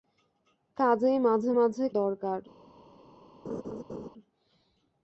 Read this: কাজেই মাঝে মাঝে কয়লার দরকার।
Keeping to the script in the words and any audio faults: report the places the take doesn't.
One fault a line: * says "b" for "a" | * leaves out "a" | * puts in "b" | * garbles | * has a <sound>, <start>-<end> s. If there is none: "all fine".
* leaves out "কয়লার"
* has a laugh, 3.4-4.1 s